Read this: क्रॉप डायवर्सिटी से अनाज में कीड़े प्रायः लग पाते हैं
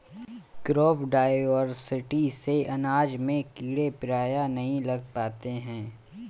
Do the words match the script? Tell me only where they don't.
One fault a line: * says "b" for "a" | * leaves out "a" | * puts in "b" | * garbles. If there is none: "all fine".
* puts in "नहीं"